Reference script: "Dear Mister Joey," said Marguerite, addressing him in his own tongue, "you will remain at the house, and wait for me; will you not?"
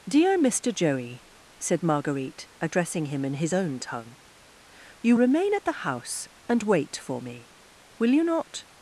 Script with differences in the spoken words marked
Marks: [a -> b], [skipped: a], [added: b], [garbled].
"Dear Mister Joey," said Marguerite, addressing him in his own tongue, "you [skipped: will] remain at the house, and wait for me; will you not?"